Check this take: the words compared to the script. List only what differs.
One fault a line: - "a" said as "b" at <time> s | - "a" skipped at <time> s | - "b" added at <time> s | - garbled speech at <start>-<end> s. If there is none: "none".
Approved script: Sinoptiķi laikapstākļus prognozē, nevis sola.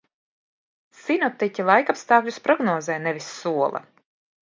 none